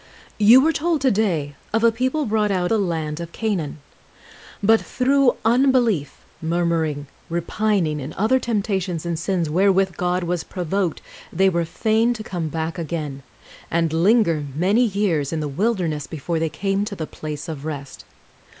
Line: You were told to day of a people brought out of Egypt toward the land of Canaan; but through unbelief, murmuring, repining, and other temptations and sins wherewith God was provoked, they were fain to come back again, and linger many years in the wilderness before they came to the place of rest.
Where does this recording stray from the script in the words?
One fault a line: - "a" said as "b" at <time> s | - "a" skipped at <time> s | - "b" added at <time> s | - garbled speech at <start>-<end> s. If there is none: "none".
- "of Egypt toward" skipped at 2.7 s